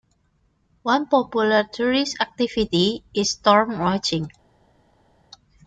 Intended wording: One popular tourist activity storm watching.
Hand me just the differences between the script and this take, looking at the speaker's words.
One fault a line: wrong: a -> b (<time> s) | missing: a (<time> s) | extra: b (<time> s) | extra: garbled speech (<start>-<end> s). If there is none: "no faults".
extra: is (3.1 s)